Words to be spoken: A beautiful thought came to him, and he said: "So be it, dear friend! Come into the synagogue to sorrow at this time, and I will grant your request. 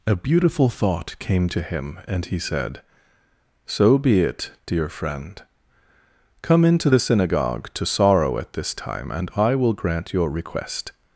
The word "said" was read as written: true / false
true